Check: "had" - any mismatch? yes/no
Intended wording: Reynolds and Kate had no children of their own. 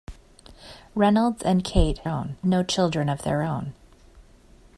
yes